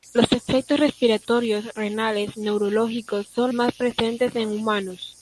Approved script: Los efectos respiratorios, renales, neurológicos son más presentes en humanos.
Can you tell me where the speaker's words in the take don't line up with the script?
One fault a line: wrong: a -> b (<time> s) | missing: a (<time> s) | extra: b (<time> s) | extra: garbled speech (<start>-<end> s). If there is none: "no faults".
no faults